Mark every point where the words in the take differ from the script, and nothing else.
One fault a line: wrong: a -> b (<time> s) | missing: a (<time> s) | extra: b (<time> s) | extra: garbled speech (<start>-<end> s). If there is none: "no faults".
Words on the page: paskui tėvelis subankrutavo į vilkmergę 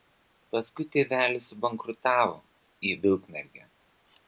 no faults